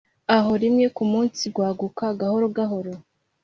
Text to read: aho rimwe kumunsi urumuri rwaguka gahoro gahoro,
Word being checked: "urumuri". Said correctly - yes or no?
no